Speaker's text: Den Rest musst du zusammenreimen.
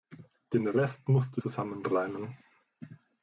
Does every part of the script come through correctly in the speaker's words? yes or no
yes